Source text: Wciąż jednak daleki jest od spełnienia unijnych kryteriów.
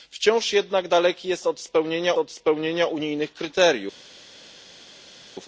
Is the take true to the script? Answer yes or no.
no